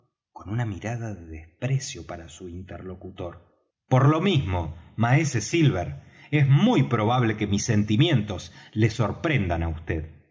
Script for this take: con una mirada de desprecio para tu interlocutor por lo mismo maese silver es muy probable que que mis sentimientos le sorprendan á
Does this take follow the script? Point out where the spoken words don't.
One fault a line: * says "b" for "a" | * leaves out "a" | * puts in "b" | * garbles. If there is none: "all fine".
* says "su" for "tu"
* leaves out "que"